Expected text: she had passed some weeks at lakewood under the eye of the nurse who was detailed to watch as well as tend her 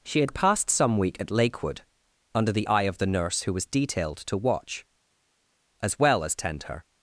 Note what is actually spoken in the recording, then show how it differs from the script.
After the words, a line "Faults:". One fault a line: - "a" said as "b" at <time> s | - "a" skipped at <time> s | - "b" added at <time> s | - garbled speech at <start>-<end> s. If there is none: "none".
she had passed some week at lakewood under the eye of the nurse who was detailed to watch as well as tend her
Faults:
- "weeks" said as "week" at 1.0 s